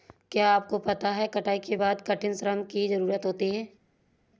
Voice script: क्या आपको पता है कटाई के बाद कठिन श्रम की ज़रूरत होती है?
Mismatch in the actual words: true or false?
false